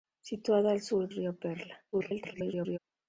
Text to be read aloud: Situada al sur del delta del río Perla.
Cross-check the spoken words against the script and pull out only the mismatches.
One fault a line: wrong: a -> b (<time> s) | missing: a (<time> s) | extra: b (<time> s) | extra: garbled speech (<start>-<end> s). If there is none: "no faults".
missing: del delta del (1.1 s)
extra: garbled speech (1.9-2.8 s)